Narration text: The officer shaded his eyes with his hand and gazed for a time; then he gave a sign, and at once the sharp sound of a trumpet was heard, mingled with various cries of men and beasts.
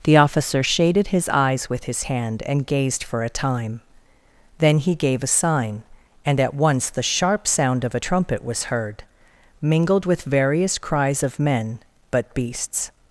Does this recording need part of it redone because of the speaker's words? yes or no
yes